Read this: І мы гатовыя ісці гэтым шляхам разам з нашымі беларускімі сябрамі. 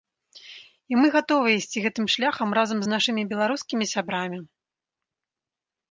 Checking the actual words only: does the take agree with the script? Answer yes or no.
yes